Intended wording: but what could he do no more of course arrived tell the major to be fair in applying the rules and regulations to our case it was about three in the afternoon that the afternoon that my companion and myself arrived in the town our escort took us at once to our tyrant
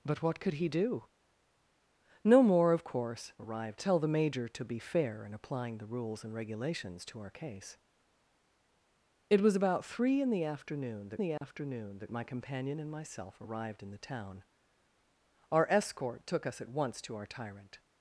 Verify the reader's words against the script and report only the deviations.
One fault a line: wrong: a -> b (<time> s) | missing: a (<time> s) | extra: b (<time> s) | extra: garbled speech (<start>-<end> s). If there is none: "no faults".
no faults